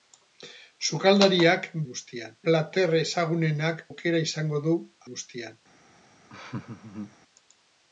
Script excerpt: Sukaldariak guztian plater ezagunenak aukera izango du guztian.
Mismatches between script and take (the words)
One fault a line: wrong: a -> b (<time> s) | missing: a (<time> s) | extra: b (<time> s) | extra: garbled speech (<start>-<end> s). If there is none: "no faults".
no faults